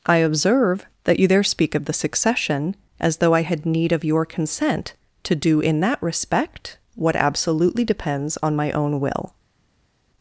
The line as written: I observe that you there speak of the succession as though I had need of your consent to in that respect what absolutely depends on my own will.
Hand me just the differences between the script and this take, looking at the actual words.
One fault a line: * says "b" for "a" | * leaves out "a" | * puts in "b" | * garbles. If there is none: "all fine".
* puts in "do"